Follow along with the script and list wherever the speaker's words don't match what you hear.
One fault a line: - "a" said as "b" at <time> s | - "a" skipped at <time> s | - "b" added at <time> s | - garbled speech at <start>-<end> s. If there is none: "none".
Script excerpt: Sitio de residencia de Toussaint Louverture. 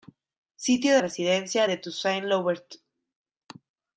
- "de" skipped at 1.0 s